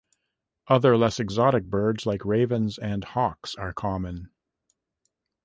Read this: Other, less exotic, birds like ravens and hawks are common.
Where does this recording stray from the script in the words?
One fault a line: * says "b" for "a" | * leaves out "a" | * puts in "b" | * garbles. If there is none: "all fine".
all fine